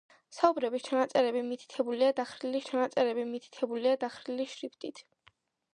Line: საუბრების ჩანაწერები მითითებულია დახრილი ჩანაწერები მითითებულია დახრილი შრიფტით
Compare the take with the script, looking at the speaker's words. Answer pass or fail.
pass